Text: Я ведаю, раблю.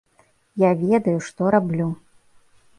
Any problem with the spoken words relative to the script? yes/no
yes